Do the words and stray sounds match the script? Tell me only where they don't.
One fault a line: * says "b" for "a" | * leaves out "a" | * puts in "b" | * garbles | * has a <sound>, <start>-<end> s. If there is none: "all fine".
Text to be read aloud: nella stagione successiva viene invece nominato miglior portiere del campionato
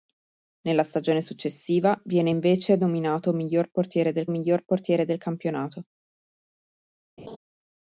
* puts in "miglior portiere del"
* has a laugh, 7.2-7.4 s